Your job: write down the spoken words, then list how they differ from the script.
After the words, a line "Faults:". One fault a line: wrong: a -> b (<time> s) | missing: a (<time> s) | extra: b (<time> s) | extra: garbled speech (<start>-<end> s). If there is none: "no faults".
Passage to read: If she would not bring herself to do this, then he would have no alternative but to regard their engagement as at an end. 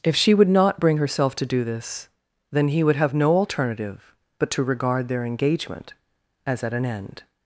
If she would not bring herself to do this, then he would have no alternative but to regard their engagement as at an end.
Faults:
no faults